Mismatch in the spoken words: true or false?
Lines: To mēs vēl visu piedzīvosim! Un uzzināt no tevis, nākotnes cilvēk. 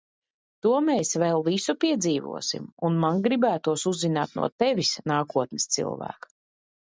true